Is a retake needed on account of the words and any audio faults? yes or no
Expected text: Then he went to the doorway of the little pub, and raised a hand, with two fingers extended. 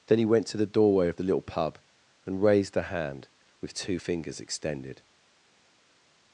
no